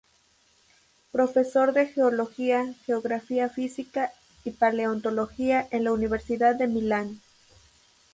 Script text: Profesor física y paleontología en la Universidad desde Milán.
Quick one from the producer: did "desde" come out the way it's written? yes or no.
no